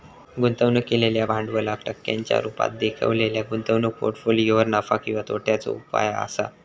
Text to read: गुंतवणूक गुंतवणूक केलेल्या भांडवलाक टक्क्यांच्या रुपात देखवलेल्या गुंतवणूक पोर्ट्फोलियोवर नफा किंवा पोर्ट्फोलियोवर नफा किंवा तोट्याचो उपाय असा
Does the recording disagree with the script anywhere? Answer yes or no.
yes